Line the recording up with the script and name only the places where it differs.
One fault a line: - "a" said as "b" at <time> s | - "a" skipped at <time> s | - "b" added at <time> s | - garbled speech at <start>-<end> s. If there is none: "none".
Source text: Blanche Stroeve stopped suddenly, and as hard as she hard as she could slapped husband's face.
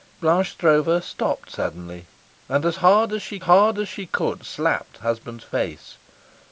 none